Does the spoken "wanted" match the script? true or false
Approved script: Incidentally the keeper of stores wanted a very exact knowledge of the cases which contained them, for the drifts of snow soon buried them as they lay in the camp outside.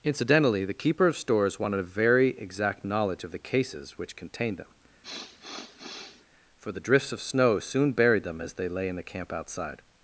true